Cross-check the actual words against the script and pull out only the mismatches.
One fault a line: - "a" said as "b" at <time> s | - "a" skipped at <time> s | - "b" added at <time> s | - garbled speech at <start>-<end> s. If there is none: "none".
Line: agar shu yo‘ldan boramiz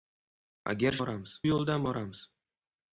- "shu" said as "boramiz" at 1.0 s